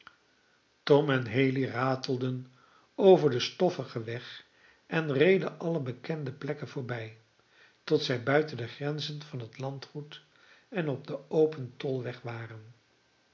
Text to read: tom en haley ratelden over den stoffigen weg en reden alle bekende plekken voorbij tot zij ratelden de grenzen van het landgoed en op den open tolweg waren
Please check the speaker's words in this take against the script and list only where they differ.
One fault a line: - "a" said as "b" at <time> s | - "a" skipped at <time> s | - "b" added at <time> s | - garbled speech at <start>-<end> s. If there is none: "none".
- "ratelden" said as "buiten" at 8.2 s